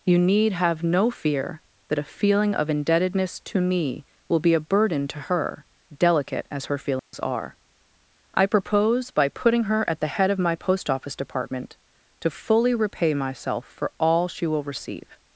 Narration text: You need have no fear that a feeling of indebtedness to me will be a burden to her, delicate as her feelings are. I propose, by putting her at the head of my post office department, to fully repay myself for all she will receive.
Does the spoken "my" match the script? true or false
true